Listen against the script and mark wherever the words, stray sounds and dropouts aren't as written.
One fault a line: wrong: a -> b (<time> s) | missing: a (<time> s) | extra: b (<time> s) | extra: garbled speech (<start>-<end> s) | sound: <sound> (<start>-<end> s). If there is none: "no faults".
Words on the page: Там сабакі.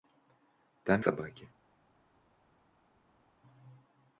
no faults